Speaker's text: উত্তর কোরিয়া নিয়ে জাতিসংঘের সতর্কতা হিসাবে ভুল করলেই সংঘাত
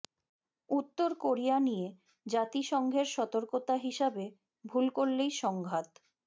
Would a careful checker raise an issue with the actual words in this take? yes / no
no